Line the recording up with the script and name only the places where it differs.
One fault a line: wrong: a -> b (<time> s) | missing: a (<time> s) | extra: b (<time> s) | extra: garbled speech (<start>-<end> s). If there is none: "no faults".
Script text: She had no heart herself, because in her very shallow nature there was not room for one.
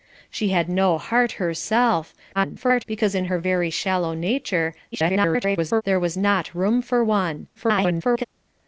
extra: garbled speech (2.3-2.8 s)
extra: garbled speech (4.9-5.8 s)
extra: garbled speech (7.5-8.2 s)